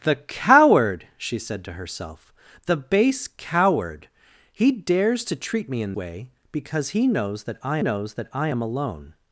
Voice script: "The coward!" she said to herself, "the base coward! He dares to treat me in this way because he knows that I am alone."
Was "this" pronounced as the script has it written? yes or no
no